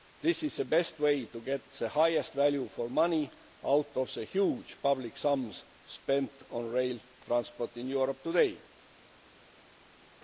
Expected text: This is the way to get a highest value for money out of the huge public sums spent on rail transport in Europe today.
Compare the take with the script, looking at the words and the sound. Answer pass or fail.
fail